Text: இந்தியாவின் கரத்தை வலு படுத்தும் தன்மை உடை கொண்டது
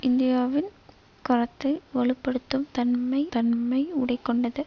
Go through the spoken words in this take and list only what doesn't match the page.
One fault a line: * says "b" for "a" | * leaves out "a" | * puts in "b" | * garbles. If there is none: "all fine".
* puts in "தன்மை"